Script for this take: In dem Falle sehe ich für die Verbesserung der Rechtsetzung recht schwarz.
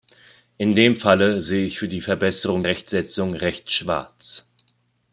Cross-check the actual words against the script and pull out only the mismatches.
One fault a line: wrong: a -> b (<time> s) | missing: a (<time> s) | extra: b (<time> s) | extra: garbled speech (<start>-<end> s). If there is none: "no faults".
missing: der (2.6 s)